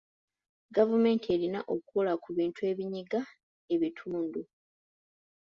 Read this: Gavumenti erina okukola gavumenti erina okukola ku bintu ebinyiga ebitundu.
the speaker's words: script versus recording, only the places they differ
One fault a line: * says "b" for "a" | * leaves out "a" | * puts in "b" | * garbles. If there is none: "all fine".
* leaves out "gavumenti erina okukola"